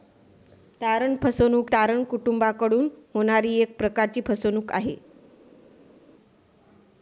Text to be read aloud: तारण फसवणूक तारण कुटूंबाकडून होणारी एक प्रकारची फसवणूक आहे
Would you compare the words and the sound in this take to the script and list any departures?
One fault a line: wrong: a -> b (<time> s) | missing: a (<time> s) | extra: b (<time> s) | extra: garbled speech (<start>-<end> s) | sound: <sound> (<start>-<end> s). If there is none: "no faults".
no faults